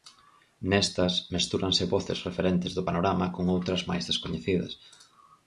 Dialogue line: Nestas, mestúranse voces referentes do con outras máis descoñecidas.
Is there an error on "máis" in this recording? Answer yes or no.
no